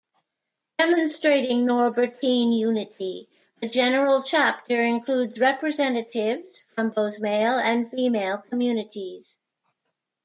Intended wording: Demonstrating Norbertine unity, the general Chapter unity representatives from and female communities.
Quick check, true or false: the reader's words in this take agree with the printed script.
false